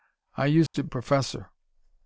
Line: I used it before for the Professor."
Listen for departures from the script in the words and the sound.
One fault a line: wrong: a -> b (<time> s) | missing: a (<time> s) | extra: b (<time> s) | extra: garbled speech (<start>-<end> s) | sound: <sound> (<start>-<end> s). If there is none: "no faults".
sound: dropout (0.7-0.7 s)
missing: before for the (0.9 s)